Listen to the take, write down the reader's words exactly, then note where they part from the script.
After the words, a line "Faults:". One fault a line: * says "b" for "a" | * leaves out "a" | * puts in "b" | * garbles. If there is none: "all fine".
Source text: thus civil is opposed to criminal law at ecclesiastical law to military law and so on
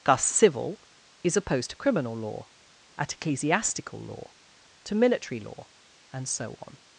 thus civil is opposed to criminal law at ecclesiastical law to military law and so on
Faults:
all fine